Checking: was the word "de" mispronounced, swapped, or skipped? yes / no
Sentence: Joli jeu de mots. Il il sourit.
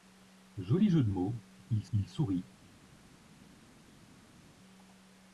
no